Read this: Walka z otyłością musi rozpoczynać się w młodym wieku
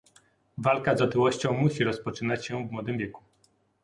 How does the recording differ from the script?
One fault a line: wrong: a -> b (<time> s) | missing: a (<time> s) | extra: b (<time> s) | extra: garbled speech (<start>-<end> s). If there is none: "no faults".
no faults